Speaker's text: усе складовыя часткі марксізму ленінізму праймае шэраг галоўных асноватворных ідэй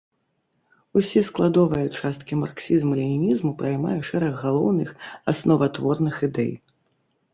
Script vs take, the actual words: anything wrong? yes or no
no